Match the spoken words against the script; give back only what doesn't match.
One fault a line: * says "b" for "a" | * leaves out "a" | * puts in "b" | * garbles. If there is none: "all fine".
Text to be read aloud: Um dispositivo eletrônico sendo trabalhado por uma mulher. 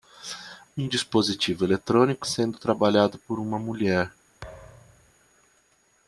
all fine